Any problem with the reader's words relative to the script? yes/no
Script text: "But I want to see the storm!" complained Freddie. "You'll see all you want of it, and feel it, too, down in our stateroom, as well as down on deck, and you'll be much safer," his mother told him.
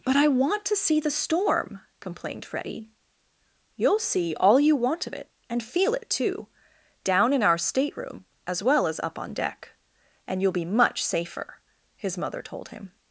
yes